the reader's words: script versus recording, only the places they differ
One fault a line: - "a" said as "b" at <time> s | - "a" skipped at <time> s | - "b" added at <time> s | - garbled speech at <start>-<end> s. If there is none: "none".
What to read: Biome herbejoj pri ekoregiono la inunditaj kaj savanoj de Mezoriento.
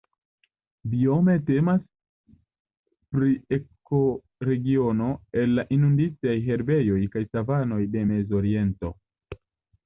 - "herbejoj" said as "temas" at 1.5 s
- "el" added at 5.4 s
- "herbejoj" added at 6.5 s